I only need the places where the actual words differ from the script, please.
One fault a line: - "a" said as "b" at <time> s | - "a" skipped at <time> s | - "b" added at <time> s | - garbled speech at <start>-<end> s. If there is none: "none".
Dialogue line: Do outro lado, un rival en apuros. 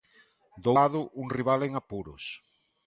- "outro" skipped at 0.7 s